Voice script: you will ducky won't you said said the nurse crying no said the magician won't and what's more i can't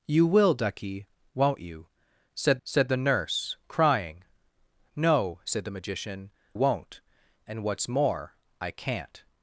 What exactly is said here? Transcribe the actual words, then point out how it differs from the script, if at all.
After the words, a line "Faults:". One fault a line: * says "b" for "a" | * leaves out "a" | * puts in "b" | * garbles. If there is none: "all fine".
you will ducky won't you said said the nurse crying no said the magician won't and what's more i can't
Faults:
all fine